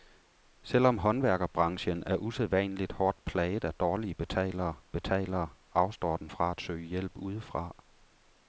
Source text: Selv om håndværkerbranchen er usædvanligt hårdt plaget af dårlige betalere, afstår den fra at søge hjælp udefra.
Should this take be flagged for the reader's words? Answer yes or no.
yes